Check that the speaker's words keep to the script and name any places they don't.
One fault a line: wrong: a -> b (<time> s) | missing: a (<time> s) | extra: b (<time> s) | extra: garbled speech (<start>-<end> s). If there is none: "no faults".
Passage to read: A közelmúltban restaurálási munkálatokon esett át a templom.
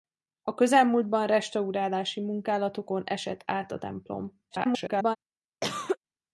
extra: garbled speech (4.5-5.2 s)